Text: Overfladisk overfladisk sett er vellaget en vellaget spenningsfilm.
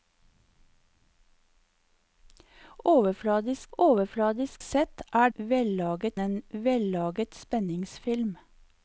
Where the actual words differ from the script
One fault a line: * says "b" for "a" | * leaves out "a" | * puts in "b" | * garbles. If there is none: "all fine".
all fine